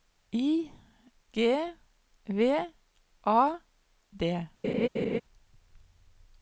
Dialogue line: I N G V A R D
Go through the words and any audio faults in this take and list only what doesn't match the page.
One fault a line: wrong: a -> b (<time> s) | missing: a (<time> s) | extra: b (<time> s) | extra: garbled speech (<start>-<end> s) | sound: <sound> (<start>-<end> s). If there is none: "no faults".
missing: N (0.7 s)
missing: R (3.6 s)
sound: laugh (4.6-5.2 s)